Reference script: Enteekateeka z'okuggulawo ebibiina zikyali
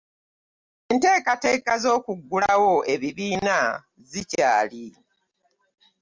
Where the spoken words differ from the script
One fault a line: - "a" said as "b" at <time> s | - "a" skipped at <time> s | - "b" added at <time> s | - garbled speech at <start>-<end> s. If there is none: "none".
none